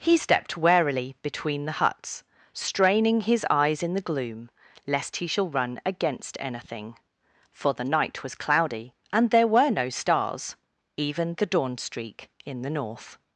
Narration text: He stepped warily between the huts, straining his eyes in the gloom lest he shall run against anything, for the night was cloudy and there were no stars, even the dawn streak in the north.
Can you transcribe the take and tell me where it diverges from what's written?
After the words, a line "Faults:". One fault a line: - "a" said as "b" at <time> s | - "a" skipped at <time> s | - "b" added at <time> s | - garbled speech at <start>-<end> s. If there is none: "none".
He stepped warily between the huts, straining his eyes in the gloom lest he shall run against anything, for the night was cloudy and there were no stars, even the dawn streak in the north.
Faults:
none